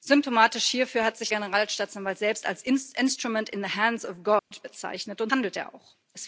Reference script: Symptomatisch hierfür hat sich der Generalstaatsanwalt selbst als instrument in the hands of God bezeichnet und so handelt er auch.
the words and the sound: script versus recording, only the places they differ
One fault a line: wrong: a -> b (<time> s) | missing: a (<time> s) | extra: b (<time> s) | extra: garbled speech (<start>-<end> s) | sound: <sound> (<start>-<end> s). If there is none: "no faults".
missing: der (1.3 s)
sound: dropout (4.4-4.5 s)
missing: so (5.3 s)